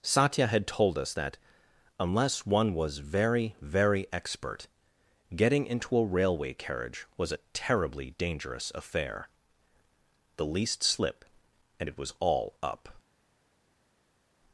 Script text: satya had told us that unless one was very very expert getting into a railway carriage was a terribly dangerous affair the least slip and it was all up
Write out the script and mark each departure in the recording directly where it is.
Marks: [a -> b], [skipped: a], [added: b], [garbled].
satya had told us that unless one was very very expert getting into a railway carriage was a terribly dangerous affair the least slip and it was all up